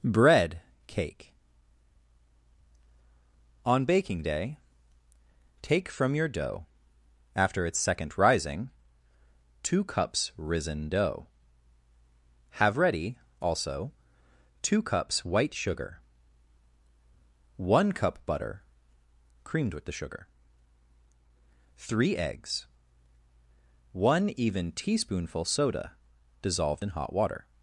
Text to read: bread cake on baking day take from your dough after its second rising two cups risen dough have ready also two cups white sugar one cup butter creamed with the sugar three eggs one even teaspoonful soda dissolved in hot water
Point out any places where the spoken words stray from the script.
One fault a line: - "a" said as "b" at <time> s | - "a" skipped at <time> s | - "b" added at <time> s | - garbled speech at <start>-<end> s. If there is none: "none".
none